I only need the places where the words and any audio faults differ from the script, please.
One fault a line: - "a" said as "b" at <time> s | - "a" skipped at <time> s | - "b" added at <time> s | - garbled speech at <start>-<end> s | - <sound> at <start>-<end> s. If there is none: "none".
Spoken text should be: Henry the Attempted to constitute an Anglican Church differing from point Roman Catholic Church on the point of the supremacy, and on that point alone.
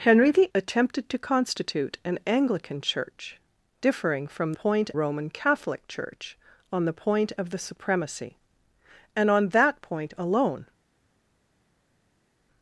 none